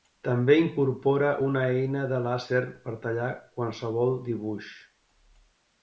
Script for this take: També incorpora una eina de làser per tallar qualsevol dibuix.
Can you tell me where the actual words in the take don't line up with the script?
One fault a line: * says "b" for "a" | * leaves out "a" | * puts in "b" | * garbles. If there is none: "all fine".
all fine